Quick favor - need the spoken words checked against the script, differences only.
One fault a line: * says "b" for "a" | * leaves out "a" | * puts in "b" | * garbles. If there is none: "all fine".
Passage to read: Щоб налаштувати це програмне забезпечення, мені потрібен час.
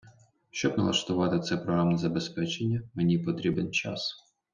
all fine